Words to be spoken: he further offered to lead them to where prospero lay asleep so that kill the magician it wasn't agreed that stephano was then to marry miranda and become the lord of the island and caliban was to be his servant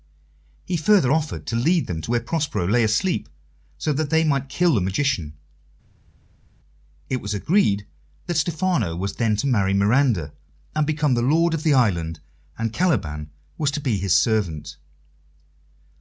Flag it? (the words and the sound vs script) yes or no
yes